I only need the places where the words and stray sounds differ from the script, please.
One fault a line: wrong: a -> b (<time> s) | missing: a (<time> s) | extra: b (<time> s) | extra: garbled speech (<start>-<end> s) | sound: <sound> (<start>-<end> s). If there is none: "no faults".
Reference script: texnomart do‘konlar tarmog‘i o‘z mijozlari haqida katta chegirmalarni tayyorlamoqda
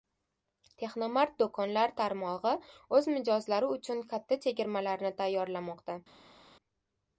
wrong: haqida -> uchun (3.8 s)